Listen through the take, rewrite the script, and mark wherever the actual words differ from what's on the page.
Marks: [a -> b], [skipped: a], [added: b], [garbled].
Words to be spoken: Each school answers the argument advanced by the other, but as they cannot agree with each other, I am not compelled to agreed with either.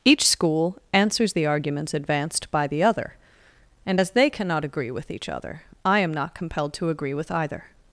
Each school answers the [argument -> arguments] advanced by the other, [but -> and] as they cannot agree with each other, I am not compelled to [agreed -> agree] with either.